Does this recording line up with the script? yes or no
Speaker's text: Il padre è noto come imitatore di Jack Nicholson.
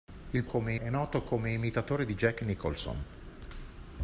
no